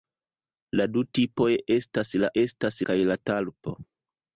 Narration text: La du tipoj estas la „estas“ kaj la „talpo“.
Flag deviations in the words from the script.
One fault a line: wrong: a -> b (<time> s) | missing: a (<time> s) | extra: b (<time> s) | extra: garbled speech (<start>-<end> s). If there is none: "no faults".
no faults